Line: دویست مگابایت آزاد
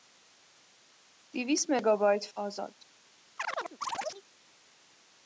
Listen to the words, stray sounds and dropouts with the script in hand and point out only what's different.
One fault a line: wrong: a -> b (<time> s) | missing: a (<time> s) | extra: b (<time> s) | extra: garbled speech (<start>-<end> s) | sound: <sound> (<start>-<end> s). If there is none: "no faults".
sound: chirp (3.4-4.2 s)